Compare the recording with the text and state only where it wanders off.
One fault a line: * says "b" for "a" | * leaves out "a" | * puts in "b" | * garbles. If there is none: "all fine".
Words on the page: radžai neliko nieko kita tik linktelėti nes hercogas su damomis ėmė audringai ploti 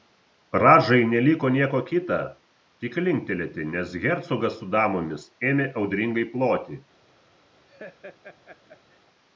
all fine